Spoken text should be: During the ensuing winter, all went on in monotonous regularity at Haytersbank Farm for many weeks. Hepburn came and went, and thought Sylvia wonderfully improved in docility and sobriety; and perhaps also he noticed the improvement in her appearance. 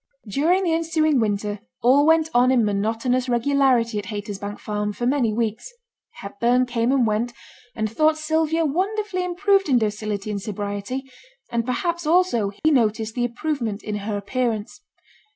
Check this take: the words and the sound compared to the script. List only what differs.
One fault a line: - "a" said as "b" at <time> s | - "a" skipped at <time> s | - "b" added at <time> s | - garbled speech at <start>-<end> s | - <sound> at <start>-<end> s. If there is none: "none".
- dropout at 12.6-12.6 s